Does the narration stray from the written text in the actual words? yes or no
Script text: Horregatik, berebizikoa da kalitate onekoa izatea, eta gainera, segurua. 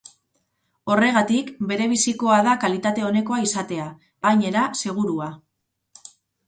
yes